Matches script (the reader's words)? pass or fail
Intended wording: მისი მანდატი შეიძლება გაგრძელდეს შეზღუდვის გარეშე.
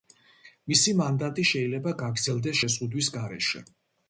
pass